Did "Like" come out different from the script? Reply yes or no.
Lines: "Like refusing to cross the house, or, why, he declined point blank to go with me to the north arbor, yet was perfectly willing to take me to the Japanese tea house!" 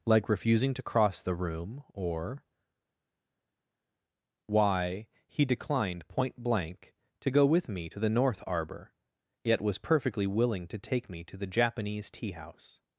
no